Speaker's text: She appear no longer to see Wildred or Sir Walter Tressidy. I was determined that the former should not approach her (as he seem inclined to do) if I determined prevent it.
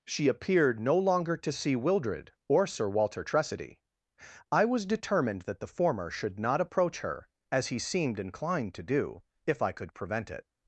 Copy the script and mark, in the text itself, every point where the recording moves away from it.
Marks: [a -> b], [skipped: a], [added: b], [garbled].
She [appear -> appeared] no longer to see Wildred or Sir Walter Tressidy. I was determined that the former should not approach her (as he [seem -> seemed] inclined to do) if I [determined -> could] prevent it.